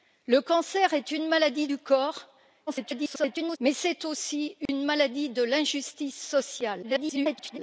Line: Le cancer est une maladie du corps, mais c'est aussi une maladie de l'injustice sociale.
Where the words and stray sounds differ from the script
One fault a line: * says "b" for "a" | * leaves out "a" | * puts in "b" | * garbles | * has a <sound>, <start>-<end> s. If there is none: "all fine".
* garbles
* has a dropout, 4.7-4.7 s
* garbles